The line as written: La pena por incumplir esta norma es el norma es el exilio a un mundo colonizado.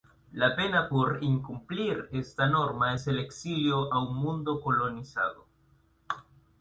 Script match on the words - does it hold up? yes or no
no